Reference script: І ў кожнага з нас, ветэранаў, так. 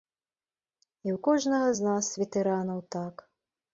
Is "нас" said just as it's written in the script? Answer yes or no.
yes